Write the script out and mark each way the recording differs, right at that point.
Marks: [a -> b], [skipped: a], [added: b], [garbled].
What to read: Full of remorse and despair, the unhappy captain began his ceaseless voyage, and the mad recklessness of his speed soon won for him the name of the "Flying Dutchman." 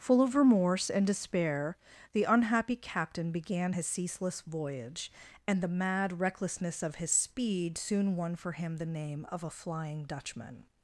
Full of remorse and despair, the unhappy captain began his ceaseless voyage, and the mad recklessness of his speed soon won for him the name of [the -> a] "Flying Dutchman."